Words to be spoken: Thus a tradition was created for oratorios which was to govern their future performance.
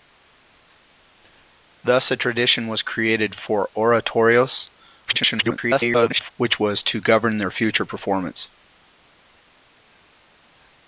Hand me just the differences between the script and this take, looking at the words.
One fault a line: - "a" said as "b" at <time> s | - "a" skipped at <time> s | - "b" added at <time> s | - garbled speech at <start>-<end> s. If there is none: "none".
- garbled speech at 5.1-6.3 s